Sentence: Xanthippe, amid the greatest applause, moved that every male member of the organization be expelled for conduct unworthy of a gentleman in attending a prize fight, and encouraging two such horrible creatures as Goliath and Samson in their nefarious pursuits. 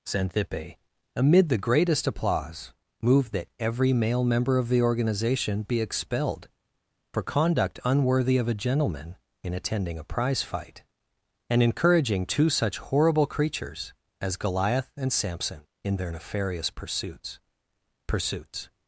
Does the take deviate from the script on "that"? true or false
false